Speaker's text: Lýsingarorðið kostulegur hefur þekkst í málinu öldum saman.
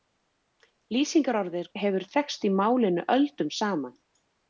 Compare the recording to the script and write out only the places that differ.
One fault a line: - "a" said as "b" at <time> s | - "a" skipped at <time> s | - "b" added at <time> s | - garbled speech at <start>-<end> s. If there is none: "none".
- "kostulegur" skipped at 1.7 s